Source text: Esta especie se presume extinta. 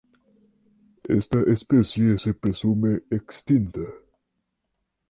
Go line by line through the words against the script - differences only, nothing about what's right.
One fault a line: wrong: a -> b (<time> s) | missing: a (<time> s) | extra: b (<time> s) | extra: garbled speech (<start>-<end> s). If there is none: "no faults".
no faults